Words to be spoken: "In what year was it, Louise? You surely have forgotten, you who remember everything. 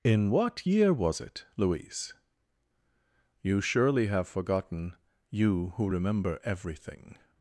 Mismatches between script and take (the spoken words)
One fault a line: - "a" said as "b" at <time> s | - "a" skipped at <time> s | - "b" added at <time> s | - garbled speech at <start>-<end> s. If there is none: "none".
none